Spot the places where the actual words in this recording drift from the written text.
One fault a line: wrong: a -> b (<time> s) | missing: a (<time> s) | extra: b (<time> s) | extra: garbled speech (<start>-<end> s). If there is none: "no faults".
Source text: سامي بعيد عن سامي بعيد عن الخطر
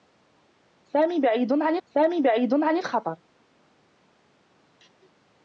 no faults